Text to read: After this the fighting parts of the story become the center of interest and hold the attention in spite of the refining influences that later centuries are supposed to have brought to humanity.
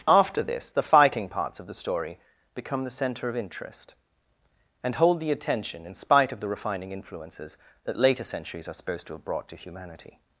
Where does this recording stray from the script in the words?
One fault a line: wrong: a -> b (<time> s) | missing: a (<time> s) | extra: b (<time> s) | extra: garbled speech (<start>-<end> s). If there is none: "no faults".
no faults